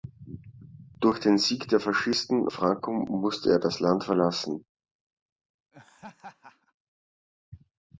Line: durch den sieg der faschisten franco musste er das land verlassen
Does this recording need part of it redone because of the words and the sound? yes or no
yes